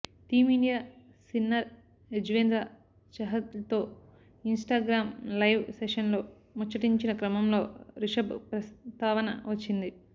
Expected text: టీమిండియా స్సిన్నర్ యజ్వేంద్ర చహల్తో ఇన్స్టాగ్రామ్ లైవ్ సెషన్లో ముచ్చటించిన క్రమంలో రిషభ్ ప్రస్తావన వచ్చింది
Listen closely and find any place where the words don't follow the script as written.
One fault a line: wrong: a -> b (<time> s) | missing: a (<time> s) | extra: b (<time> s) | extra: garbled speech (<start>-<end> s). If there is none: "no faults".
no faults